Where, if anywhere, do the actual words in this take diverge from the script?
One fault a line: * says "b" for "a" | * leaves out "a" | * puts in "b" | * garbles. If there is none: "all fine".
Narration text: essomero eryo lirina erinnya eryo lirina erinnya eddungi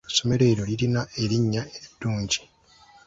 * leaves out "eryo lirina erinnya"